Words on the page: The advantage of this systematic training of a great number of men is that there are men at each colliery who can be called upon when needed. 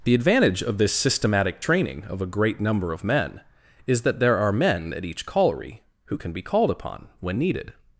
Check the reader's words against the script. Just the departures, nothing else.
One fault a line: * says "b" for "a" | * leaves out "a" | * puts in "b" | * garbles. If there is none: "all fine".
all fine